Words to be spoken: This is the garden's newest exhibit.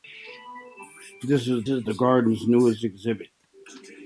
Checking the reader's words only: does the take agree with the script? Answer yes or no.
no